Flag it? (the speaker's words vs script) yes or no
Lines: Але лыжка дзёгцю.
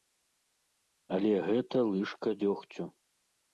yes